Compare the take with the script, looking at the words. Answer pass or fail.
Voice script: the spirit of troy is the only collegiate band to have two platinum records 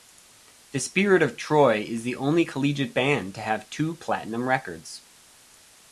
pass